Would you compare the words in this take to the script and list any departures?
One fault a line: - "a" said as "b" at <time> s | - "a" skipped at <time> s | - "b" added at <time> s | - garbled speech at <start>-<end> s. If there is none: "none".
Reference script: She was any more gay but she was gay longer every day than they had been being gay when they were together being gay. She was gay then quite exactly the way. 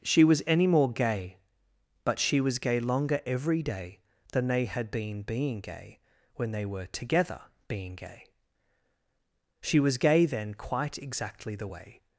none